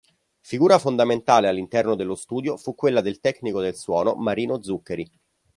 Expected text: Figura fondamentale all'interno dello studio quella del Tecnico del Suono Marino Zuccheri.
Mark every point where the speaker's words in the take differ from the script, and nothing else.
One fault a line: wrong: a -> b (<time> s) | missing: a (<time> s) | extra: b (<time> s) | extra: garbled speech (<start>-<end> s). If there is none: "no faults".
extra: fu (2.6 s)